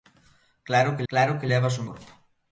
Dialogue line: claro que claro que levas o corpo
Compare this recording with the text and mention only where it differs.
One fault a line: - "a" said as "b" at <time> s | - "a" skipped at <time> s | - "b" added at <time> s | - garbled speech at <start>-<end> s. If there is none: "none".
none